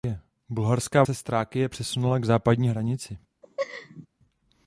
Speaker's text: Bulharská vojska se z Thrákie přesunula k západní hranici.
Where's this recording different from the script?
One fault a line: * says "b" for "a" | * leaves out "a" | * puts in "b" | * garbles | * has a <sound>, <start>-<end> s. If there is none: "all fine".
* leaves out "vojska"
* has a laugh, 3.4-4.1 s